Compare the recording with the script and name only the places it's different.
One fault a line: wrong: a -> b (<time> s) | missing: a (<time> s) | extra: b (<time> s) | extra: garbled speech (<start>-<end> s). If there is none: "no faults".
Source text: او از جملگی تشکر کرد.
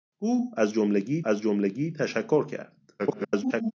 extra: از جملگی (1.2 s)
extra: garbled speech (3.0-3.7 s)